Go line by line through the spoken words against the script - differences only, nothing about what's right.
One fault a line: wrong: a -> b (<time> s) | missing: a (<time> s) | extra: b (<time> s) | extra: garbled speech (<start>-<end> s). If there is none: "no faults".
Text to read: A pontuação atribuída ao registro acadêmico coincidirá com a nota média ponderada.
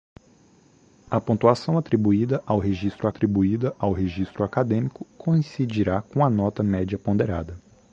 extra: atribuída ao registro (3.1 s)